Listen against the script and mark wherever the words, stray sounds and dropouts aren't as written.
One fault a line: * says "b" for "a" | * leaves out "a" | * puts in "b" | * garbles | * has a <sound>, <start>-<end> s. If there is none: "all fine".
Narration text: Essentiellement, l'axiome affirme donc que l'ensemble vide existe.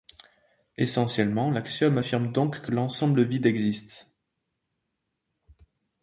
all fine